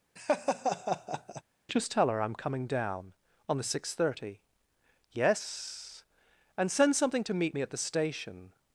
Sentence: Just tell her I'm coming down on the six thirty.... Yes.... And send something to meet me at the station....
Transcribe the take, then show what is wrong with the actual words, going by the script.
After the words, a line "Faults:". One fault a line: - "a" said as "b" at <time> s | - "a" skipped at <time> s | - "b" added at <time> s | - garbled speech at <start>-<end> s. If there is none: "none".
Just tell her I'm coming down on the six thirty.... Yes.... And send something to meet me at the station....
Faults:
none